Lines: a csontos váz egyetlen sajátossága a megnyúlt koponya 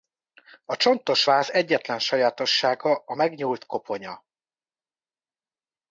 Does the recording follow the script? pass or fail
pass